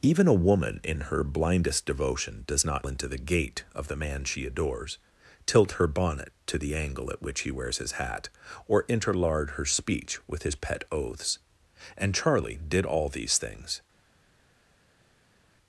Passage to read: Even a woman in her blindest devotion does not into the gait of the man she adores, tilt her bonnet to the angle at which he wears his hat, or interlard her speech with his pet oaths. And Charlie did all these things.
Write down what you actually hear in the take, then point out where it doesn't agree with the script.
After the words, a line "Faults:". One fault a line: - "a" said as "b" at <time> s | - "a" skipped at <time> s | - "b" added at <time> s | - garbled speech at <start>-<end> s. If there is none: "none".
Even a woman in her blindest devotion does not into the gait of the man she adores, tilt her bonnet to the angle at which he wears his hat, or interlard her speech with his pet oaths. And Charlie did all these things.
Faults:
none